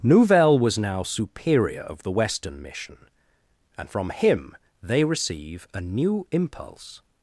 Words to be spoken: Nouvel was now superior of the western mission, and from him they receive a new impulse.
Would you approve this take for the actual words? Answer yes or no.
yes